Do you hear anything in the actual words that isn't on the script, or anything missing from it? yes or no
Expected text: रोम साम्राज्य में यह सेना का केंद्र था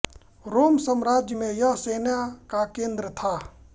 no